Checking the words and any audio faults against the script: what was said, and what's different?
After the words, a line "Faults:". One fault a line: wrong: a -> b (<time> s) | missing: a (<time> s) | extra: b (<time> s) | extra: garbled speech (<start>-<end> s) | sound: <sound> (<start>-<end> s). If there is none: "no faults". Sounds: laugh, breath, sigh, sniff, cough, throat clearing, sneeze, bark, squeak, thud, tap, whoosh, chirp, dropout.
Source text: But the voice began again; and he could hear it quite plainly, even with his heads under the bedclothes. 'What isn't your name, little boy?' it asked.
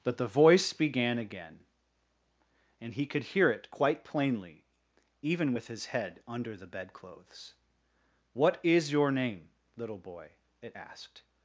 But the voice began again; and he could hear it quite plainly, even with his head under the bedclothes. 'What is your name, little boy?' it asked.
Faults:
wrong: heads -> head (5.9 s)
wrong: isn't -> is (8.6 s)